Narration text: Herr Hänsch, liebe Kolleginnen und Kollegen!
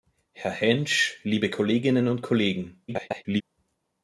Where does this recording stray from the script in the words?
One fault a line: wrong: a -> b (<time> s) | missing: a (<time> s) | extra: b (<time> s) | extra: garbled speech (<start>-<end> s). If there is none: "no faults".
extra: garbled speech (2.9-3.4 s)